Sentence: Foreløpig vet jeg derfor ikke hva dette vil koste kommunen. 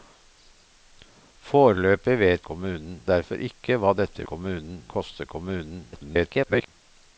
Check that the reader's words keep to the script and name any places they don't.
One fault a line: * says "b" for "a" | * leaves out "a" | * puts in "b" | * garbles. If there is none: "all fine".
* says "kommunen" for "jeg"
* says "kommunen" for "vil"
* garbles